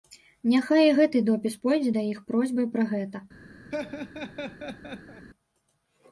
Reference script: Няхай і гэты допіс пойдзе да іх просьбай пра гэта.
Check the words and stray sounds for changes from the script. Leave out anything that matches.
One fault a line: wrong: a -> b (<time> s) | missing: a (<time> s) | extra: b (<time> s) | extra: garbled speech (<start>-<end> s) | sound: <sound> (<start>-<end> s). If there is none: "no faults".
sound: laugh (3.7-5.3 s)